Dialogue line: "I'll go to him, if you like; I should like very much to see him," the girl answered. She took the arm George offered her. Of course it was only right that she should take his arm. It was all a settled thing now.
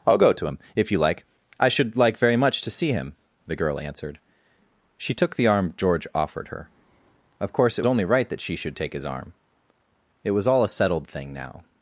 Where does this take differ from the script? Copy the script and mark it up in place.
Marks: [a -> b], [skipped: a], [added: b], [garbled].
"I'll go to him, if you like; I should like very much to see him," the girl answered. She took the arm George offered her. Of course it [skipped: was] only right that she should take his arm. It was all a settled thing now.